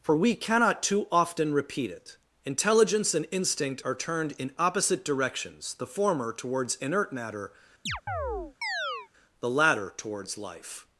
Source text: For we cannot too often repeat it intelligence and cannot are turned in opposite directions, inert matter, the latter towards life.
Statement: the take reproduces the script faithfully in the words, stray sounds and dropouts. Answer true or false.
false